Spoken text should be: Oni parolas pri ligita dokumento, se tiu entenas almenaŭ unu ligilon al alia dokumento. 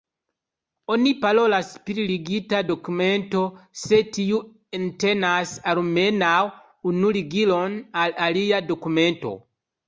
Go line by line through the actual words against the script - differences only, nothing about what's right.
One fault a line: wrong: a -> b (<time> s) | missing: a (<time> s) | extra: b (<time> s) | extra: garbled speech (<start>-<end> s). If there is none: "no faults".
no faults